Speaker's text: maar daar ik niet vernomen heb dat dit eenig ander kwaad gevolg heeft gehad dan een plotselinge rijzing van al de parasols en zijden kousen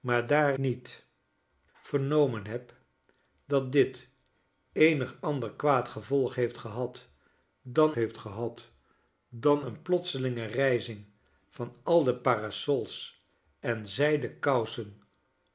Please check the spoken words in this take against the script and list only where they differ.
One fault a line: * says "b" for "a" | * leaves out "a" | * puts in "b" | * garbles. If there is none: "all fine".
* leaves out "ik"
* puts in "heeft gehad dan"